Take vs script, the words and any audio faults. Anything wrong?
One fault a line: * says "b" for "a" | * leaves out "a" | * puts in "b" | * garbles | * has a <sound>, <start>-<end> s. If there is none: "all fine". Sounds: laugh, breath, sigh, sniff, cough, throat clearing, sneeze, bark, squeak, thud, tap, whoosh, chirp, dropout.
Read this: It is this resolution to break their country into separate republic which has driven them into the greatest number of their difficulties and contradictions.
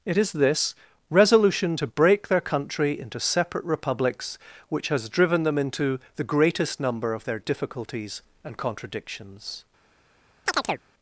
* says "republics" for "republic"
* has a chirp, 10.5-10.8 s